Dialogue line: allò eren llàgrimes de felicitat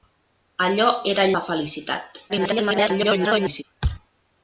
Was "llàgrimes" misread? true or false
true